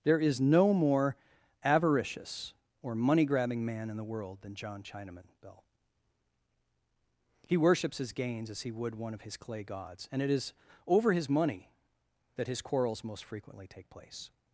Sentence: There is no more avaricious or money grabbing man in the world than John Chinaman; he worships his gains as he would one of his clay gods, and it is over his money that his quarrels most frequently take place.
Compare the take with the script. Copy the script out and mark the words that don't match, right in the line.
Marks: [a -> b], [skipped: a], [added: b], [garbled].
There is no more avaricious or money grabbing man in the world than John Chinaman; [added: bell] he worships his gains as he would one of his clay gods, and it is over his money that his quarrels most frequently take place.